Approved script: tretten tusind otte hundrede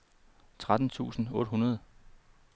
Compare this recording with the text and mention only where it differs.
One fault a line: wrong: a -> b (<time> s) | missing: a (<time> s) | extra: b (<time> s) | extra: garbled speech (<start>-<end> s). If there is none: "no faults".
no faults